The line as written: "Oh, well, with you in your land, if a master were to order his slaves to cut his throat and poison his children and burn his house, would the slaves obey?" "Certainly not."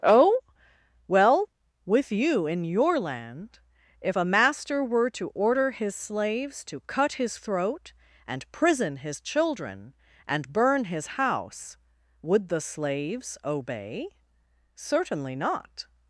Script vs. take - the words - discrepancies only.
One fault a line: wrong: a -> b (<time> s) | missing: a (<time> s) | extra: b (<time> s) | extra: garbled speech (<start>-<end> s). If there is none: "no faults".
wrong: poison -> prison (8.5 s)